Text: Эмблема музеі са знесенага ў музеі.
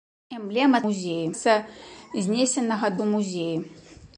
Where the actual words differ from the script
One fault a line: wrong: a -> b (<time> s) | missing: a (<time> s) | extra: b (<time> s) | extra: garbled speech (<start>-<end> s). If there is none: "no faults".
no faults